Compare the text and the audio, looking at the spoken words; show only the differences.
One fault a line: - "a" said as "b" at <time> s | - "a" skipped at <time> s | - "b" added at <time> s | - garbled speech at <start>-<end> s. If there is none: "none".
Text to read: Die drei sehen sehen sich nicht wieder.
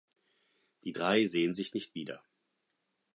- "sehen" skipped at 1.5 s